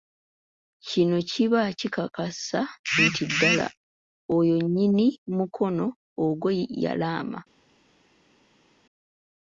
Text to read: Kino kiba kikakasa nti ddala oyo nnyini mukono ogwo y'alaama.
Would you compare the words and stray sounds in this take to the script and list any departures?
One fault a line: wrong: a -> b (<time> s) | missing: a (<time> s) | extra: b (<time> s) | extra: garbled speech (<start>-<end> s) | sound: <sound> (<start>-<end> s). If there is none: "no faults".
no faults